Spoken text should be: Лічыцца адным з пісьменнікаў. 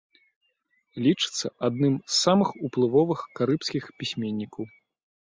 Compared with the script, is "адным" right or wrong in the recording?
right